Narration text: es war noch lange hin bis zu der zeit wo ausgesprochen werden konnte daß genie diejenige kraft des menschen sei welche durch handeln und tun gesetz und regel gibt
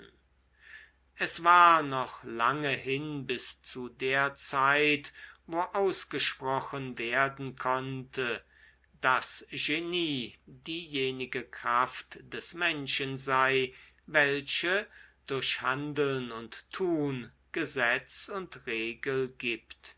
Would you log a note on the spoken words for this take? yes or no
no